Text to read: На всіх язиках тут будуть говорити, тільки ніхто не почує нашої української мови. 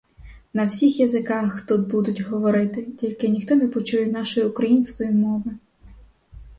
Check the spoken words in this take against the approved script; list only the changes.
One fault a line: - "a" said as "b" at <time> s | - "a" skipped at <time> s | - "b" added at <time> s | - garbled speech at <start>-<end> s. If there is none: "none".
none